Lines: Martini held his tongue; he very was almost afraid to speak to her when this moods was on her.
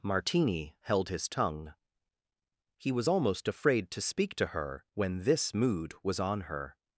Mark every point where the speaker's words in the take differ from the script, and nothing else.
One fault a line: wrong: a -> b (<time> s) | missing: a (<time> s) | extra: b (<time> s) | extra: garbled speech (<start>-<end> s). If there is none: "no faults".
missing: very (2.9 s)
wrong: moods -> mood (5.5 s)